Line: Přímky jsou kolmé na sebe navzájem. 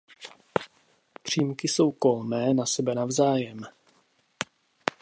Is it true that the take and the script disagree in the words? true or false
false